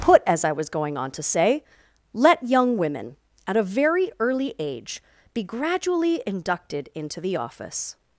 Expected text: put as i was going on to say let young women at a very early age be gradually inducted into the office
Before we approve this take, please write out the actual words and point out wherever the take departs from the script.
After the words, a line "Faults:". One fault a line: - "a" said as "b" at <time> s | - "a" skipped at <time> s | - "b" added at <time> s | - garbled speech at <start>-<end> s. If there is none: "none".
put as i was going on to say let young women at a very early age be gradually inducted into the office
Faults:
none